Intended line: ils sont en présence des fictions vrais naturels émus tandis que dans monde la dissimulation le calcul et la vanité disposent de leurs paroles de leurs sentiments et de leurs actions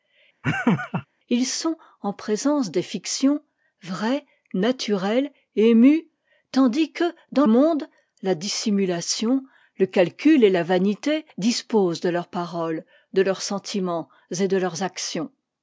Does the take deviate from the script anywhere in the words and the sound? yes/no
yes